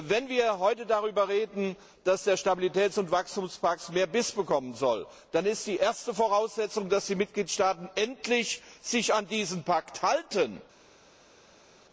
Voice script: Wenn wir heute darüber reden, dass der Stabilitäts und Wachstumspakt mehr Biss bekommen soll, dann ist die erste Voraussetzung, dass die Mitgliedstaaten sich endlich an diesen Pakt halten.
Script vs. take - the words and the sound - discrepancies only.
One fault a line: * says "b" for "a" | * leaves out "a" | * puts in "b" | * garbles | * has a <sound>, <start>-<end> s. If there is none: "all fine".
all fine